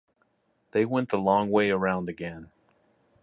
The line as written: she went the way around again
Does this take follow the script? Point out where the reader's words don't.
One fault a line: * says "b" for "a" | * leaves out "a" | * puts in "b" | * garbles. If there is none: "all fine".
* says "they" for "she"
* puts in "long"